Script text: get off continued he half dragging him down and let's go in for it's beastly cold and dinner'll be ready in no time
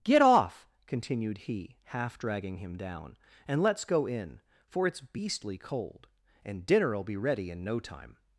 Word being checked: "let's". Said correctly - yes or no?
yes